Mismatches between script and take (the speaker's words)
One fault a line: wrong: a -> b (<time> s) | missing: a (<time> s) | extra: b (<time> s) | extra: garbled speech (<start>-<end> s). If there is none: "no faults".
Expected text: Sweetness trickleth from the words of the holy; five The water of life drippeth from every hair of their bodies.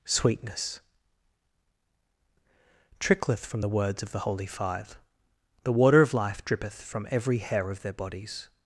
no faults